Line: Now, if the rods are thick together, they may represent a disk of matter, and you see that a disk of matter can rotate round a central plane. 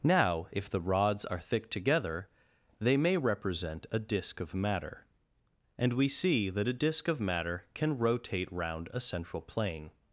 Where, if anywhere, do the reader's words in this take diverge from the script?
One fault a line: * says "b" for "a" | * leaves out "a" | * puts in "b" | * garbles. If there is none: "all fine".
* says "we" for "you"